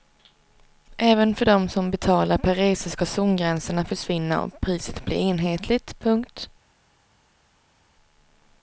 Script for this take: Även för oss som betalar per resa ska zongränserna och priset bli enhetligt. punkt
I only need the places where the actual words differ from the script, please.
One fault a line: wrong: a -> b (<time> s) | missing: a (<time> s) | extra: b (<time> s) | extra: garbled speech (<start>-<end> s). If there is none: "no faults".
wrong: oss -> dem (1.4 s)
extra: försvinna (3.8 s)